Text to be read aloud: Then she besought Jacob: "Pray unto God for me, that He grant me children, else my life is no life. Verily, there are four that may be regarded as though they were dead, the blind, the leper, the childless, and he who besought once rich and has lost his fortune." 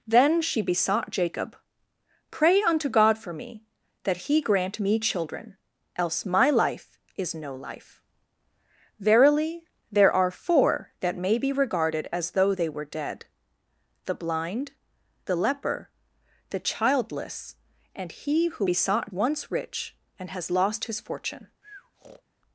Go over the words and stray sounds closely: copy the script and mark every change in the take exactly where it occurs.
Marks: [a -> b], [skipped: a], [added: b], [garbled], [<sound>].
Then she besought Jacob: "Pray unto God for me, that He grant me children, else my life is no life. Verily, there are four that may be regarded as though they were dead, the blind, the leper, the childless, and he who besought once rich and has lost his fortune." [breath]